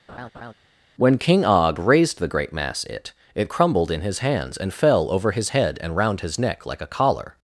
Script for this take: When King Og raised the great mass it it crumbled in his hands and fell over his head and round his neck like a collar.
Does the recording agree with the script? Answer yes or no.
yes